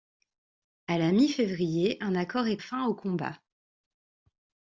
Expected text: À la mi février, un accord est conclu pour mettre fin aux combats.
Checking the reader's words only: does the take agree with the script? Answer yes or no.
no